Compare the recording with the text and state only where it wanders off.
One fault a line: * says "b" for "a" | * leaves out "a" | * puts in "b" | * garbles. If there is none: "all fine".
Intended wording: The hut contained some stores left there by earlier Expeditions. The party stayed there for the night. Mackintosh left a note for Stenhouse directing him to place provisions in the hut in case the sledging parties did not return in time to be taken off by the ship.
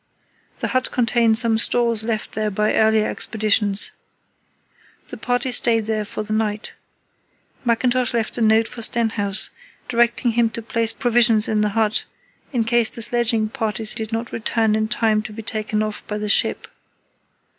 all fine